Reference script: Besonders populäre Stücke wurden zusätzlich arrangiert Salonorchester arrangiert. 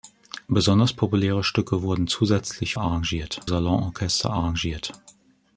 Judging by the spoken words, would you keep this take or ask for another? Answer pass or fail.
pass